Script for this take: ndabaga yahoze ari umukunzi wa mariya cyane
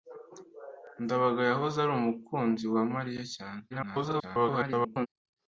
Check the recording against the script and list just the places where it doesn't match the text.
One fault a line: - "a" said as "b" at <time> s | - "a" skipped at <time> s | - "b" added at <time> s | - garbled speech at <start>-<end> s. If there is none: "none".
- garbled speech at 3.7-5.1 s